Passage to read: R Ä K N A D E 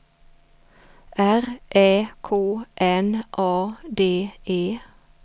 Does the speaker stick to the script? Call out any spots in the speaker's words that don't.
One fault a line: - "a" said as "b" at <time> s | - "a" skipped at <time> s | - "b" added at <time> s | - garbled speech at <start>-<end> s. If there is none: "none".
none